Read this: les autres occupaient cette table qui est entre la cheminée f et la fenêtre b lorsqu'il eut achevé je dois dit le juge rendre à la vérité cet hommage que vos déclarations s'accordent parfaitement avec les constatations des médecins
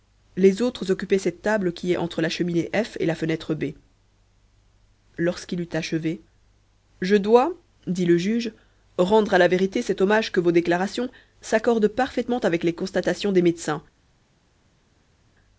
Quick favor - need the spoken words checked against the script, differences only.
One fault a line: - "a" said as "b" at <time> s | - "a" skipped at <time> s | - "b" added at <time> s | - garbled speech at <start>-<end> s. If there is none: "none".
none